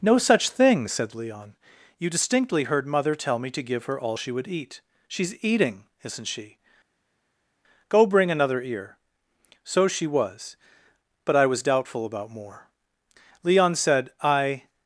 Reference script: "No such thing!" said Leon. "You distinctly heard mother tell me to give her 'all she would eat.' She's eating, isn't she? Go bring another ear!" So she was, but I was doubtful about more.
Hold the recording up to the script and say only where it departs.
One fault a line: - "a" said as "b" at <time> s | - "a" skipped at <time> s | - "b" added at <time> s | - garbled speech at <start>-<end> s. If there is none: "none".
- "Leon said I" added at 13.4 s